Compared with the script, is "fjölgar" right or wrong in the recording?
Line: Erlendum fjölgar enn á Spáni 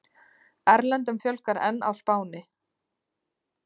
right